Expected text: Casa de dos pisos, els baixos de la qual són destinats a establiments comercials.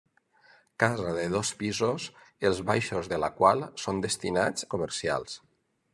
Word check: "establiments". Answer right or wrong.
wrong